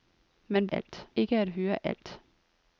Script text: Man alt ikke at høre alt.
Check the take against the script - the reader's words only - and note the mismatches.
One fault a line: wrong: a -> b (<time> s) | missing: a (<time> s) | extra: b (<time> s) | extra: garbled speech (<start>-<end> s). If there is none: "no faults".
no faults